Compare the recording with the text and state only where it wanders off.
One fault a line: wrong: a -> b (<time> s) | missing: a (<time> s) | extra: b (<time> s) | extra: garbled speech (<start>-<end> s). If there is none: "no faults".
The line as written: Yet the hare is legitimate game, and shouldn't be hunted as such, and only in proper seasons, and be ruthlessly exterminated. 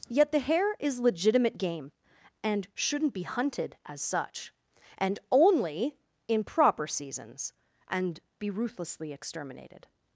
no faults